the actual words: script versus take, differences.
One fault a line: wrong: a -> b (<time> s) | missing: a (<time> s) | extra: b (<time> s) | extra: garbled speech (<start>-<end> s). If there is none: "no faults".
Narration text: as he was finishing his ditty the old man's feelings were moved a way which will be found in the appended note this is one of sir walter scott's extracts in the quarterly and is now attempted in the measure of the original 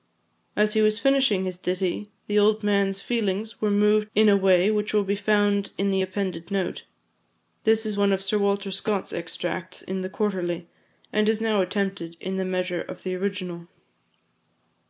extra: in (4.2 s)